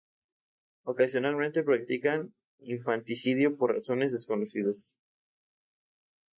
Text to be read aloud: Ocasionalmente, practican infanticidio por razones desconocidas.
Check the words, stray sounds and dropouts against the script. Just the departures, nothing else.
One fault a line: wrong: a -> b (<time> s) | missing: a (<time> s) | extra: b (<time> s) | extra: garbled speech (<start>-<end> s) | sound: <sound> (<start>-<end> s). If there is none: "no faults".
no faults